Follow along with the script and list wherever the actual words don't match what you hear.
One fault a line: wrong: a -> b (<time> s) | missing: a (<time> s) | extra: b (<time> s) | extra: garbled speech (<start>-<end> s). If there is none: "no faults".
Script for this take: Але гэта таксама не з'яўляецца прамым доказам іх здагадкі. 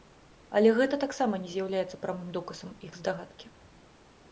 no faults